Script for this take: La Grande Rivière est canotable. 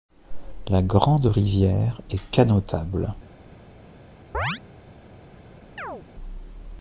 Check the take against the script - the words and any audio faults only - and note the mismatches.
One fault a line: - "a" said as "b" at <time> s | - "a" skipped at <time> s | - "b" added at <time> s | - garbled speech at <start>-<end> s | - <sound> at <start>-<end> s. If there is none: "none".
- chirp at 4.3-4.6 s
- chirp at 5.8-6.0 s